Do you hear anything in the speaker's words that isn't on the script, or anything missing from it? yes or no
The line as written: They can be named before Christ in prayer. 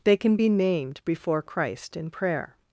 no